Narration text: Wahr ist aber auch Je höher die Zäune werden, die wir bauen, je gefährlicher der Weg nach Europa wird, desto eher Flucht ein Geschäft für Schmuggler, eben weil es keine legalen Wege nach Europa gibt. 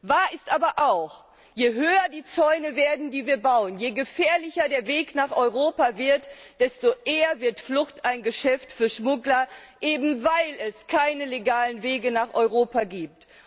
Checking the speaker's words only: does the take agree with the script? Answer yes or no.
no